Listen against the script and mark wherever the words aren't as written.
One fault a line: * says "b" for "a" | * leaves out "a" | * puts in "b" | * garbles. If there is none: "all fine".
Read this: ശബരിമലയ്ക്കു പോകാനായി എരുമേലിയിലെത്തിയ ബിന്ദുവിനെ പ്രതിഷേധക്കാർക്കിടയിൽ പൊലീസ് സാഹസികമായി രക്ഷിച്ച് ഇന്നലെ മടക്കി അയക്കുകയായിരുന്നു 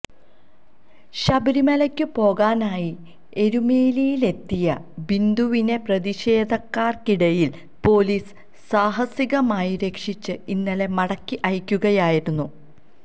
all fine